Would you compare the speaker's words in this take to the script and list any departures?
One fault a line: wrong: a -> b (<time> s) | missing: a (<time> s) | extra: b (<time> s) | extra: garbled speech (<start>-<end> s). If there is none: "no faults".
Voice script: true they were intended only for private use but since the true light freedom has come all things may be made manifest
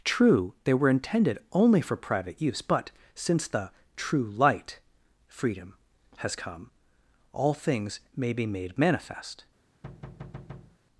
no faults